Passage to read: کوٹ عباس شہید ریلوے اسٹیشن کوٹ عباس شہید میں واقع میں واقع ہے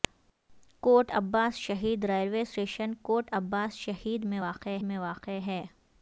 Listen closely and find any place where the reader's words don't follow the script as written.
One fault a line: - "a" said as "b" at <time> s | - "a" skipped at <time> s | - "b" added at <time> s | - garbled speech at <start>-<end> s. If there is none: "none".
none